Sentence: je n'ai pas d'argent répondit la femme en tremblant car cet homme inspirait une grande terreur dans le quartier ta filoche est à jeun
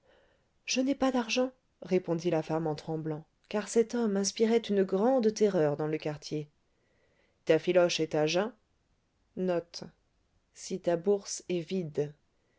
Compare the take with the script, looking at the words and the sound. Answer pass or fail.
pass